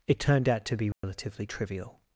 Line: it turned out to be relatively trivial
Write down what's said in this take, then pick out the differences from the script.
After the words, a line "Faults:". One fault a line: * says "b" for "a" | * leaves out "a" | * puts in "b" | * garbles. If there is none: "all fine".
it turned out to be relatively trivial
Faults:
all fine